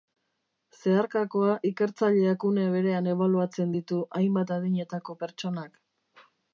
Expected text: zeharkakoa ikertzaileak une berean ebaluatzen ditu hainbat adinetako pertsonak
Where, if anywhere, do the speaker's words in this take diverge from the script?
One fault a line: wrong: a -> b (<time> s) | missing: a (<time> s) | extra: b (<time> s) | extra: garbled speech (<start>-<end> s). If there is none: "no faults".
no faults